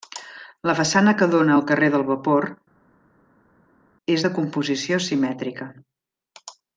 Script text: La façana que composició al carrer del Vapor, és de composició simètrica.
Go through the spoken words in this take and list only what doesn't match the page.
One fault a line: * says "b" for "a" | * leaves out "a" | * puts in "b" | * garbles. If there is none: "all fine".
* says "dóna" for "composició"